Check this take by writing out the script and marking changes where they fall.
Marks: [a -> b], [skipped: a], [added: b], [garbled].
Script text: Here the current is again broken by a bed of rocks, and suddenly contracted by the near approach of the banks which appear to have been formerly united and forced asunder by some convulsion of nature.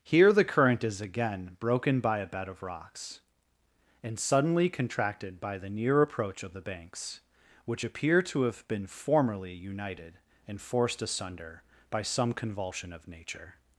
Here the current is again broken by a bed of rocks, and suddenly contracted by the near approach of the banks which appear to have been formerly united and forced asunder by some convulsion of nature.